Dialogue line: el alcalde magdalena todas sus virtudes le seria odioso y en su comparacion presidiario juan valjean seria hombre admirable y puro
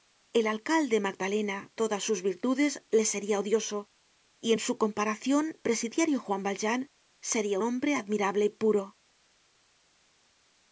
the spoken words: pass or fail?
pass